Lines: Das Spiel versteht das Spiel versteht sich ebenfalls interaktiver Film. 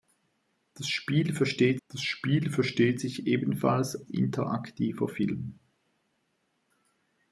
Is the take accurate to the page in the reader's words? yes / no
yes